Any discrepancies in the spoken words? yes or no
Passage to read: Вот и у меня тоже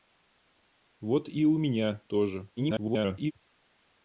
yes